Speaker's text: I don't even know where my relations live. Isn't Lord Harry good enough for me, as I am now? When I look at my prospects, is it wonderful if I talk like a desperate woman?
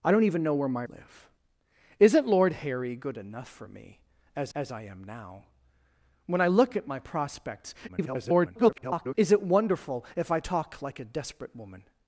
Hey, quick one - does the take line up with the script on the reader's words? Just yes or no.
no